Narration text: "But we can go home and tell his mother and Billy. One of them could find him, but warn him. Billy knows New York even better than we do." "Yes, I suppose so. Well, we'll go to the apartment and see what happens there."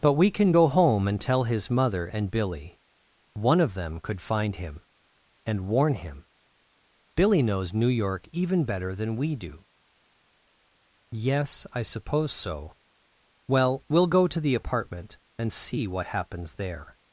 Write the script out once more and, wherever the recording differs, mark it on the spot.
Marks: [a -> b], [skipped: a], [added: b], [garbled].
"But we can go home and tell his mother and Billy. One of them could find him, [but -> and] warn him. Billy knows New York even better than we do." "Yes, I suppose so. Well, we'll go to the apartment and see what happens there."